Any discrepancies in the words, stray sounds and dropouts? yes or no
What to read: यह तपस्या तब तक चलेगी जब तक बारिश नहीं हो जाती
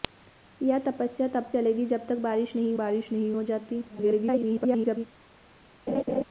yes